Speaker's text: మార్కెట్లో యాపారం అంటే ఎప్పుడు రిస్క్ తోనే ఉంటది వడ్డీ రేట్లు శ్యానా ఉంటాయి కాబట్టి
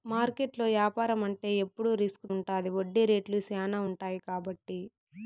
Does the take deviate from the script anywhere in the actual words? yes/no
yes